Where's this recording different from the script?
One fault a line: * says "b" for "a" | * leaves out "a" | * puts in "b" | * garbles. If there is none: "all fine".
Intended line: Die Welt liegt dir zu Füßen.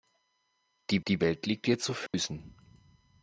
* puts in "die"